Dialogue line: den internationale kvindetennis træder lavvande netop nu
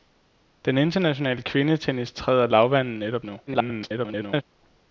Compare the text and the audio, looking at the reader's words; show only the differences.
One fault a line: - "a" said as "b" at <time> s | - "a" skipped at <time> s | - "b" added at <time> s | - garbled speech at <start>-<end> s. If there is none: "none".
- garbled speech at 3.5-4.4 s